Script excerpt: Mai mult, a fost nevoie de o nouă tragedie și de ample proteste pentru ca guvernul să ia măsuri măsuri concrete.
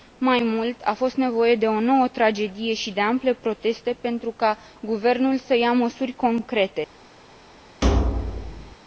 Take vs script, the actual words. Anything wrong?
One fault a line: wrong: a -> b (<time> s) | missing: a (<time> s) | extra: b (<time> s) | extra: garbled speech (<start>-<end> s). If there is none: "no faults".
missing: măsuri (6.1 s)